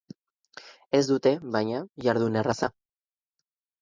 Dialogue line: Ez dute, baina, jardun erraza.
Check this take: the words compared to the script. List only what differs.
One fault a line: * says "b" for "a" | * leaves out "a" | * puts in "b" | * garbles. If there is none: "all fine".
all fine